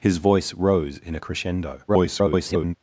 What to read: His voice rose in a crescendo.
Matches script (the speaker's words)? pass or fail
fail